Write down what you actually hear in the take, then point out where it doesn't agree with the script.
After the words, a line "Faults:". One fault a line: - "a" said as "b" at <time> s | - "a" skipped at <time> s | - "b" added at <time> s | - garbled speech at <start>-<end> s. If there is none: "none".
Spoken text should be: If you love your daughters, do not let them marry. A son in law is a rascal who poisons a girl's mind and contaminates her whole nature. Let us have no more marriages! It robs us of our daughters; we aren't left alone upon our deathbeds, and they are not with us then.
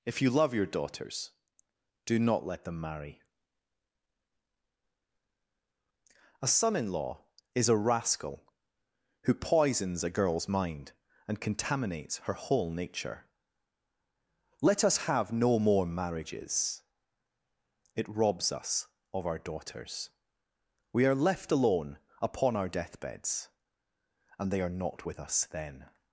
If you love your daughters, do not let them marry. A son in law is a rascal who poisons a girl's mind and contaminates her whole nature. Let us have no more marriages! It robs us of our daughters; we are left alone upon our deathbeds, and they are not with us then.
Faults:
- "aren't" said as "are" at 21.1 s